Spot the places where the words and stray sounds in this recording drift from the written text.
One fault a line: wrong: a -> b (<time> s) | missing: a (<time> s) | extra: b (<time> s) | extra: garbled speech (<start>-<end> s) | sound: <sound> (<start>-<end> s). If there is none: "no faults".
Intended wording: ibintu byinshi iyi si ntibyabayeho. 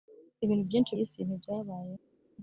no faults